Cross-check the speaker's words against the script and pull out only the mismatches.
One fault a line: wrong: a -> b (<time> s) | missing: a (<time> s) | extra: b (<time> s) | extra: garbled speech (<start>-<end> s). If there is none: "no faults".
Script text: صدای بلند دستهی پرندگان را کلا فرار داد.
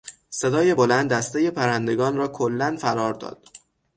no faults